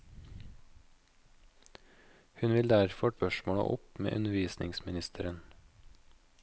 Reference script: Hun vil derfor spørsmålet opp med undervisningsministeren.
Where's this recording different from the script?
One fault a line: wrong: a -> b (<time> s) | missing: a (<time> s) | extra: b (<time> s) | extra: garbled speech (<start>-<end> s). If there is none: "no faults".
no faults